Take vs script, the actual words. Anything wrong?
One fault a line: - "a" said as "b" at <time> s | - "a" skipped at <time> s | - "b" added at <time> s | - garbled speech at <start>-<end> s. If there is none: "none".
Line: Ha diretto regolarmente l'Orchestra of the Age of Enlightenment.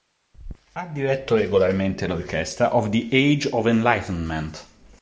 none